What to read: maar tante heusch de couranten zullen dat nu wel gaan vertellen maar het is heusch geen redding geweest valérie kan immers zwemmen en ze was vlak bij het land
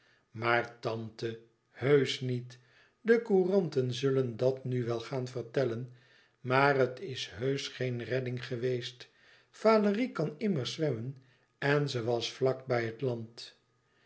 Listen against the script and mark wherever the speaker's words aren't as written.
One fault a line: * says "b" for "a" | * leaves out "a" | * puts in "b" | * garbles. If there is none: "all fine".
* puts in "niet"